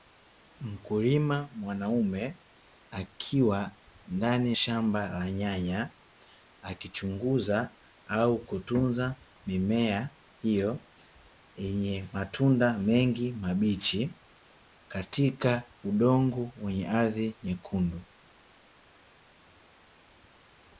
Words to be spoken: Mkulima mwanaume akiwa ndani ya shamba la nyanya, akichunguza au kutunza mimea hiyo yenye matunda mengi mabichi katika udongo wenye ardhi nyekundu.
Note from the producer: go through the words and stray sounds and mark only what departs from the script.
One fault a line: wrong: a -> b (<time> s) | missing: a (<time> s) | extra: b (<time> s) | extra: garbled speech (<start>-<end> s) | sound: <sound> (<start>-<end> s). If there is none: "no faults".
missing: ya (4.5 s)